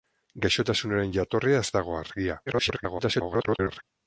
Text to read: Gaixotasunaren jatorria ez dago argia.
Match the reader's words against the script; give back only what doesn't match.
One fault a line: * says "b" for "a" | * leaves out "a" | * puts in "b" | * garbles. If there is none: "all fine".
* garbles